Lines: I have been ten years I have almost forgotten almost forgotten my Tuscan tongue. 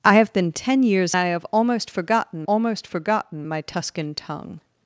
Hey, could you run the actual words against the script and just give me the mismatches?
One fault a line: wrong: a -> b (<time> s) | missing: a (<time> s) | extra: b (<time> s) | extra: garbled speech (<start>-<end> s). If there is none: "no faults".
no faults